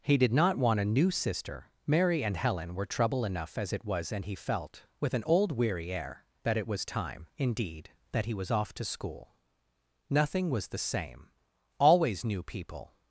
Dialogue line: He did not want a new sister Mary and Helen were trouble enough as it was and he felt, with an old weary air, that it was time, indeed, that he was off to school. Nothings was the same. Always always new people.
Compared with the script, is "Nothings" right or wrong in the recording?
wrong